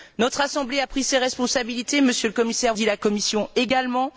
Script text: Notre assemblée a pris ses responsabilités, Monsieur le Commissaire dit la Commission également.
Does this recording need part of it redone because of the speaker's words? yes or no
no